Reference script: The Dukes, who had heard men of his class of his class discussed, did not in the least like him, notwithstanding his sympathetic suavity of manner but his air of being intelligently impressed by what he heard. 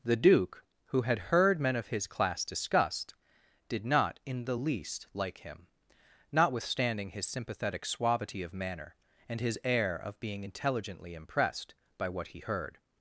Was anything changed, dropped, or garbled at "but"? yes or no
yes